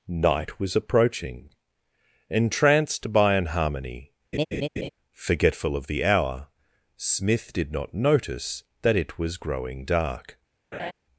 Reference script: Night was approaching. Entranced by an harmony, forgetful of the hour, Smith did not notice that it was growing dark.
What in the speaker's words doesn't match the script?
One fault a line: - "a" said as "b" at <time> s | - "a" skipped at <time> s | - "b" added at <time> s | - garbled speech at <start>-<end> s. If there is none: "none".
none